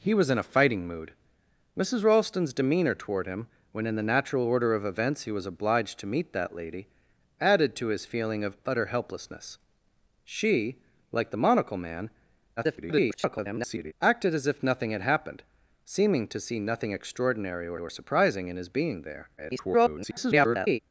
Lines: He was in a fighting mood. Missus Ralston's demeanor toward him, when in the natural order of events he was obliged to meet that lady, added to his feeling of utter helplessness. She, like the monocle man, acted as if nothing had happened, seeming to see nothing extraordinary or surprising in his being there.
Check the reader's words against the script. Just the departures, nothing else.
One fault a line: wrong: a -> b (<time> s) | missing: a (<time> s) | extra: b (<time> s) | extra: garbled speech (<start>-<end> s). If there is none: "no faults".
extra: garbled speech (12.6-13.9 s)
extra: or (17.8 s)
extra: garbled speech (19.4-20.8 s)